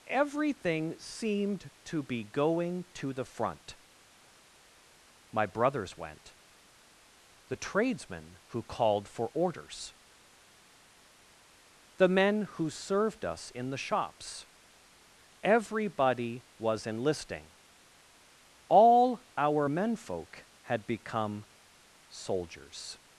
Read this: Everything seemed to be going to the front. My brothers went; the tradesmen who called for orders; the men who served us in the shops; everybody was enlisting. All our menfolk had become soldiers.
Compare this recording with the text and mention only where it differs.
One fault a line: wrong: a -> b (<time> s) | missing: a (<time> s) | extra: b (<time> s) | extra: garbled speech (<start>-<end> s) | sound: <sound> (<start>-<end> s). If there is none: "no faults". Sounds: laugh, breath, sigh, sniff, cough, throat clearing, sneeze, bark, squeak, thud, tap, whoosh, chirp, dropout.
no faults